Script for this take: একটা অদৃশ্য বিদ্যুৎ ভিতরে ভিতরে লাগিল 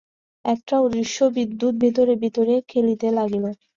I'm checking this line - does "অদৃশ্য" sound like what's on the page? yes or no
yes